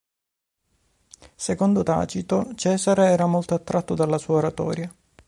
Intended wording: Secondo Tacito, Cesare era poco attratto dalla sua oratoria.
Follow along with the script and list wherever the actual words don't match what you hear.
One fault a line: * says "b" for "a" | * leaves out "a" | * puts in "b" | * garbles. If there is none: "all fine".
* says "molto" for "poco"